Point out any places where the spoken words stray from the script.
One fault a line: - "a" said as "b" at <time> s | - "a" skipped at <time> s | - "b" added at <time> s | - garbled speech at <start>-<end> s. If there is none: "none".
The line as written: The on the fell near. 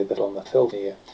none